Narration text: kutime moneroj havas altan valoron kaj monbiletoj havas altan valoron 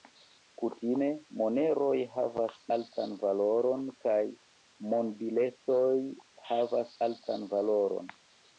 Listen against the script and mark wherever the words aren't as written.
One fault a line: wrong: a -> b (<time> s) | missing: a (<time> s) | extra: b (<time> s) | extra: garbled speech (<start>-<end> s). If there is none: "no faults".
no faults